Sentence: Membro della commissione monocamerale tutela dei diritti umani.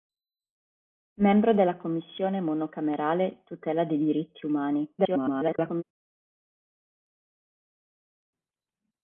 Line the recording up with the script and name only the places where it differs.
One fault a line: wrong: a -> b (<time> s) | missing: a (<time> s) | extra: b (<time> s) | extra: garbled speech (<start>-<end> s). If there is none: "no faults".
extra: garbled speech (5.0-5.8 s)